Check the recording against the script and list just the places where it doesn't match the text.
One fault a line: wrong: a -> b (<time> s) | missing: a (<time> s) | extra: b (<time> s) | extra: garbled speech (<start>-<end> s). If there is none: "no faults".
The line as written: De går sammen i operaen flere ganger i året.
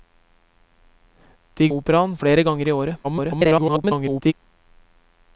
missing: går sammen i (1.7 s)
extra: garbled speech (3.0-4.3 s)